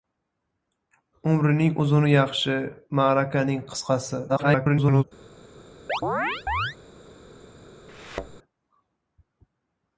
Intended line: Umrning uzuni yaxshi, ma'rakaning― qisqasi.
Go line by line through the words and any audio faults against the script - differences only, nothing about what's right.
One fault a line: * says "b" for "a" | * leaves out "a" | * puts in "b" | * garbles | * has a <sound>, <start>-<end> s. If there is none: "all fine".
* garbles
* has a chirp, 5.9-6.8 s
* has a thud, 7.9-8.4 s